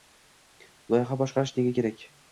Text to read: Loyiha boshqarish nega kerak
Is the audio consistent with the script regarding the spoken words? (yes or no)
yes